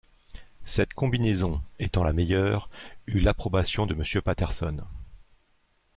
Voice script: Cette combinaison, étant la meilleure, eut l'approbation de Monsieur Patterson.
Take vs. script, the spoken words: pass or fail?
pass